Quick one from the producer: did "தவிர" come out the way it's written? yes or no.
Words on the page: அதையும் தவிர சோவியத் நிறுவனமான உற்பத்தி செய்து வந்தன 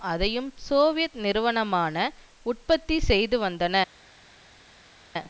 no